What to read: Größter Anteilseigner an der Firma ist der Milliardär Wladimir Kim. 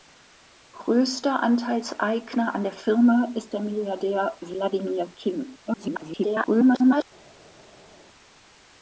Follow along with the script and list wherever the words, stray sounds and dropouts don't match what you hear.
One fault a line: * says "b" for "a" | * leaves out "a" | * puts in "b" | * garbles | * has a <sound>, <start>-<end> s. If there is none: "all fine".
* garbles